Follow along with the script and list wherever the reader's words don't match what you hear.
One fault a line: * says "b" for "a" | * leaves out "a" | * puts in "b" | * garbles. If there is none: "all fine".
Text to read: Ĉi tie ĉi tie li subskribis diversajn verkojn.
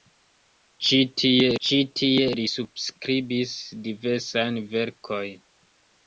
all fine